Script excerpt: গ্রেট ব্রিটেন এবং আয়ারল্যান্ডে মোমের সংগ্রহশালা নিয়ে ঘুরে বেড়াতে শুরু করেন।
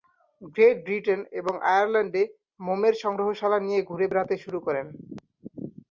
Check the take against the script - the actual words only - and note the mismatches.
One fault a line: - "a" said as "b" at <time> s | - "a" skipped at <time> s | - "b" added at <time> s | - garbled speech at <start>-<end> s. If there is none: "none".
none